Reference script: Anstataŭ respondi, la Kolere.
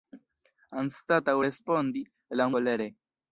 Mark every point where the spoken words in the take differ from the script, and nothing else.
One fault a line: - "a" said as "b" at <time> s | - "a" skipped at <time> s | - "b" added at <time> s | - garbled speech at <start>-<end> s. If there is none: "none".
none